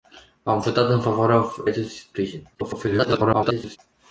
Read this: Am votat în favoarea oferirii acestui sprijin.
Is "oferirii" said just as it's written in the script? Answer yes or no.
no